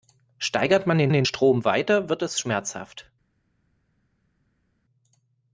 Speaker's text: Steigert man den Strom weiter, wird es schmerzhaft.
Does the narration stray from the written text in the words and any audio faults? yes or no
yes